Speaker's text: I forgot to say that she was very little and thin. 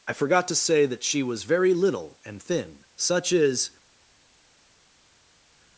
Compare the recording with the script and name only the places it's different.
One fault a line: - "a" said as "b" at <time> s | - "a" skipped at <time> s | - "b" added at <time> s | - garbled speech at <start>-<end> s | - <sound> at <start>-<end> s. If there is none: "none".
- "Such is" added at 3.0 s